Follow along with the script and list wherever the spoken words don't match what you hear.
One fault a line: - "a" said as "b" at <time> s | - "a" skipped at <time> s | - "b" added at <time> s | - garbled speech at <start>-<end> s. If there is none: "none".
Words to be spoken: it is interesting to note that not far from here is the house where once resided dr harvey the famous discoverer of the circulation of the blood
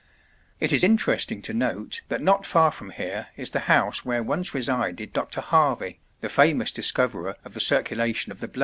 none